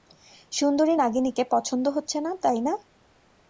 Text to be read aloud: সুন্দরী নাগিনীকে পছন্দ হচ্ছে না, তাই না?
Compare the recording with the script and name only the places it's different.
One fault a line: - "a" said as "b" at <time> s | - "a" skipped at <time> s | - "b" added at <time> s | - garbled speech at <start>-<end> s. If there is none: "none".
none